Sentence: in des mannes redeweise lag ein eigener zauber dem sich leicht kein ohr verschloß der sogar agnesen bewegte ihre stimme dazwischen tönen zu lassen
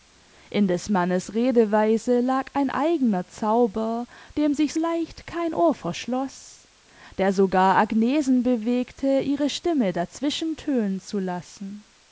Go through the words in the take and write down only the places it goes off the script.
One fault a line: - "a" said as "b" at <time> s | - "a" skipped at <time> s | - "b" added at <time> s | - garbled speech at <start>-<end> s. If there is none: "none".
none